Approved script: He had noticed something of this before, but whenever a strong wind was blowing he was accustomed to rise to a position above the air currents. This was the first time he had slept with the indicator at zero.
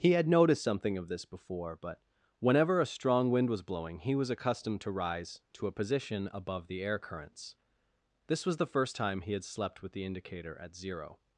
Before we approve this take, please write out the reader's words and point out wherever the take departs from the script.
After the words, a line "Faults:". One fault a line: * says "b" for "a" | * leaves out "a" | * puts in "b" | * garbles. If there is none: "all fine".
He had noticed something of this before, but whenever a strong wind was blowing he was accustomed to rise to a position above the air currents. This was the first time he had slept with the indicator at zero.
Faults:
all fine